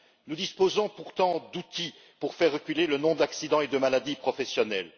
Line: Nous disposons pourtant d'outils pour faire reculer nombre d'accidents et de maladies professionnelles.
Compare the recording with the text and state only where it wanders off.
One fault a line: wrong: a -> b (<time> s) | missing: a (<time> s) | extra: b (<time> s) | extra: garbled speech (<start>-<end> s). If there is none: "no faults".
extra: le (2.9 s)